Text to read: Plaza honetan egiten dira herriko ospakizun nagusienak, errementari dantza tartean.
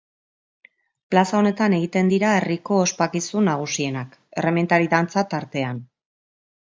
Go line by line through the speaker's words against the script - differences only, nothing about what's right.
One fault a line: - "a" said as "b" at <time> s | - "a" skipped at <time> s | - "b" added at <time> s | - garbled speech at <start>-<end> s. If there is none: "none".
none